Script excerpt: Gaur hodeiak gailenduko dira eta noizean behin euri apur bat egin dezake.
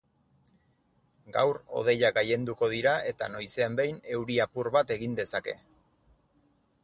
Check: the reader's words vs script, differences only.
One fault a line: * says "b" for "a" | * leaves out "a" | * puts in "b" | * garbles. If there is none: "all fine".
all fine